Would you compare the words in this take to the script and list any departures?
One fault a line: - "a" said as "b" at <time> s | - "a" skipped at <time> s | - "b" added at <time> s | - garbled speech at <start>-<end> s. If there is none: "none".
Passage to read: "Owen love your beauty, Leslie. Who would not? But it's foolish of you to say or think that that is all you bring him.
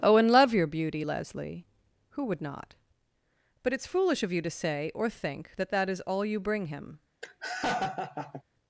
none